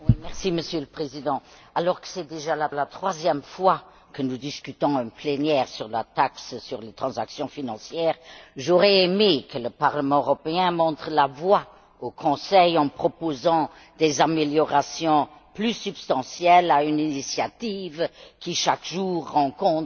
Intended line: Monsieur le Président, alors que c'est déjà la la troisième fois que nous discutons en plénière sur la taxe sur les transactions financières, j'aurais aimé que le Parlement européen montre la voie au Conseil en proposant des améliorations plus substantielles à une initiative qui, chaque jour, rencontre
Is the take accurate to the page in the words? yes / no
yes